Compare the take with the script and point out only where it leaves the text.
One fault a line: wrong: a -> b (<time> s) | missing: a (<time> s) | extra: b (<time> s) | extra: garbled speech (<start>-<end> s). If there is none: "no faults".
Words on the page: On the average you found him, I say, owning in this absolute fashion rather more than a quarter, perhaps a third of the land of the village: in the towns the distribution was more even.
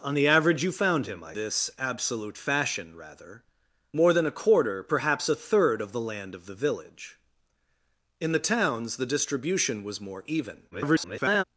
missing: say owning in (1.4 s)
extra: garbled speech (10.7-11.4 s)